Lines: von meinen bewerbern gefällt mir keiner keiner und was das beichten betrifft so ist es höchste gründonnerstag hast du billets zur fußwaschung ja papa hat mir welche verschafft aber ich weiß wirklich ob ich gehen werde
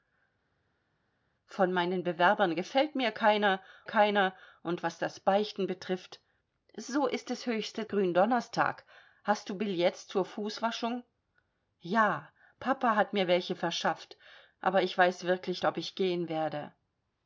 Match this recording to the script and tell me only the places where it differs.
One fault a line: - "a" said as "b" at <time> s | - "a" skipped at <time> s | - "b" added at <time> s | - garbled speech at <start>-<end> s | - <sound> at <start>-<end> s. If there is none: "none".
none